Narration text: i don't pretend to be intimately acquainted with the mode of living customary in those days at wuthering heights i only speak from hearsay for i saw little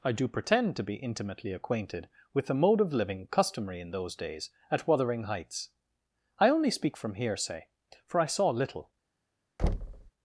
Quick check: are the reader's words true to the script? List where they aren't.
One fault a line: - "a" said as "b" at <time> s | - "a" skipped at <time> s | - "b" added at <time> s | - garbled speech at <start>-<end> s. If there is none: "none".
- "don't" said as "do" at 0.1 s